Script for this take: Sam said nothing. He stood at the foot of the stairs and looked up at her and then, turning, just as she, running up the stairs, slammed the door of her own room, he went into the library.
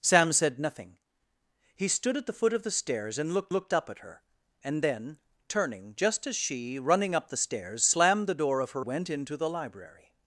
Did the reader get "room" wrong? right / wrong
wrong